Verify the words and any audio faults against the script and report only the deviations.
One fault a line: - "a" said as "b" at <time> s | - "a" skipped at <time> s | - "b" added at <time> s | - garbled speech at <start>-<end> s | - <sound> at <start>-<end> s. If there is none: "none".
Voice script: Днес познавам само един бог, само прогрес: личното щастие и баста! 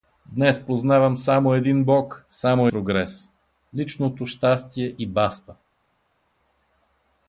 none